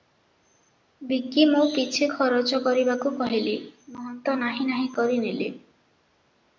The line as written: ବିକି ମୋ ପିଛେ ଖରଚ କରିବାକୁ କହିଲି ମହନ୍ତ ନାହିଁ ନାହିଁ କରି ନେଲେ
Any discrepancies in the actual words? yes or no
no